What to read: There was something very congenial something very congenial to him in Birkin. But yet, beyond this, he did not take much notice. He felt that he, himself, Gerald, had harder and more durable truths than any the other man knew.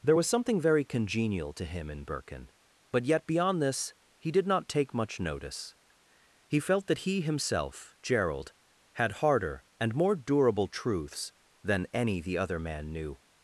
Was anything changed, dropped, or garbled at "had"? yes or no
no